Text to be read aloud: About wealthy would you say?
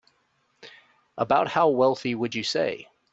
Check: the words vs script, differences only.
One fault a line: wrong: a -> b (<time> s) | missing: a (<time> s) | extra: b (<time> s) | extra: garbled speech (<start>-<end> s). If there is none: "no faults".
extra: how (1.5 s)